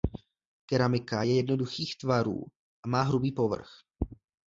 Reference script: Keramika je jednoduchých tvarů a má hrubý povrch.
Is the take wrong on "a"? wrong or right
right